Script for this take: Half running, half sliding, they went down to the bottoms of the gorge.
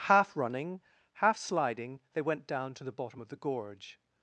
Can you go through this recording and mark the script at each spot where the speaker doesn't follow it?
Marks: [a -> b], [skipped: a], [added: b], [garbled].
Half running, half sliding, they went down to the [bottoms -> bottom] of the gorge.